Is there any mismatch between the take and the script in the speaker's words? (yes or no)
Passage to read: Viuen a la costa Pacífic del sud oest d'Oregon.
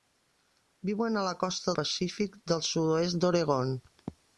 no